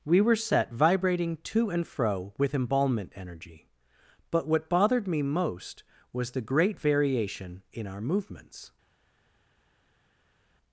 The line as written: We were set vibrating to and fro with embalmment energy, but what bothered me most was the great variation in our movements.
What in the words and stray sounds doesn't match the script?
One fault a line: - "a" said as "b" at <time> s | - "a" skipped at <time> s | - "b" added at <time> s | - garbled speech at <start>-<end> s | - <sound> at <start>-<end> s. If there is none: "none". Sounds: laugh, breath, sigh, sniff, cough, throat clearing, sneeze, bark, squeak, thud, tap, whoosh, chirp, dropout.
none